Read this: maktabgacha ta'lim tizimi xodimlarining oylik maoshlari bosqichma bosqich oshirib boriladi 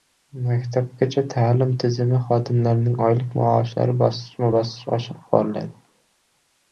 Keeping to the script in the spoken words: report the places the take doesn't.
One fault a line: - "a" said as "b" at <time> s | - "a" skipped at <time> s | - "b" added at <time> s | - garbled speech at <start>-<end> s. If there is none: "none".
none